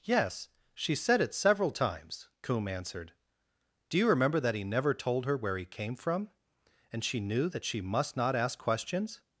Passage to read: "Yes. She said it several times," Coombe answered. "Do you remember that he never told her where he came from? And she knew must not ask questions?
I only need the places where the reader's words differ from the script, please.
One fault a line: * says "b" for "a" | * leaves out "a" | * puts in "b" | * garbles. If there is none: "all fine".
* puts in "that she"